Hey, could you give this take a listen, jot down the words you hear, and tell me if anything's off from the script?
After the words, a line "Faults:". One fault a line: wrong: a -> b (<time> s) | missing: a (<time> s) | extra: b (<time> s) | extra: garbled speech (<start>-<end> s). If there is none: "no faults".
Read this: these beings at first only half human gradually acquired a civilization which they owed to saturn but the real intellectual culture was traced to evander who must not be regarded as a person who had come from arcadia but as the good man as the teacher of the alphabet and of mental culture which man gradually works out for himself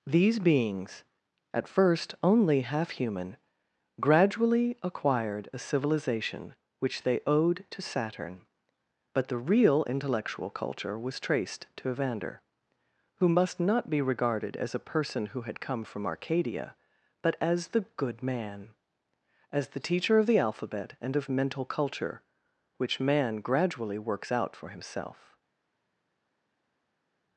these beings at first only half human gradually acquired a civilization which they owed to saturn but the real intellectual culture was traced to evander who must not be regarded as a person who had come from arcadia but as the good man as the teacher of the alphabet and of mental culture which man gradually works out for himself
Faults:
no faults